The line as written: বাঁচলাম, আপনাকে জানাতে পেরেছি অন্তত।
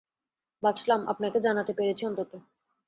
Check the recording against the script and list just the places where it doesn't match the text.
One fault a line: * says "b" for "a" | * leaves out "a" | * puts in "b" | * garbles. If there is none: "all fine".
all fine